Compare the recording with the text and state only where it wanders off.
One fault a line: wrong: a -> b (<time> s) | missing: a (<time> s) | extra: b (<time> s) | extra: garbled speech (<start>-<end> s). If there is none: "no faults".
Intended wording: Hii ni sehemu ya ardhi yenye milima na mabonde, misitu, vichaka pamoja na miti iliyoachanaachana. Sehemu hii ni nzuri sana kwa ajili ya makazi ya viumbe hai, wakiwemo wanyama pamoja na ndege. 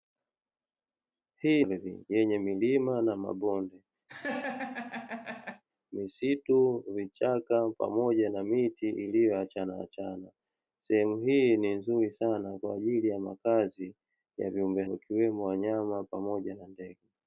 missing: ni sehemu ya (1.6 s)
missing: hai (14.8 s)